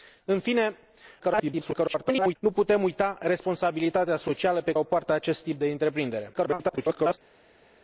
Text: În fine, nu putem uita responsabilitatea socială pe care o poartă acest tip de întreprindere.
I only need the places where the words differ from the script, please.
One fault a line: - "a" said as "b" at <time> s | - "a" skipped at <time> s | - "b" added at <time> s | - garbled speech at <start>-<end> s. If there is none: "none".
- garbled speech at 1.2-2.4 s
- "care" skipped at 4.7 s
- garbled speech at 6.3-7.2 s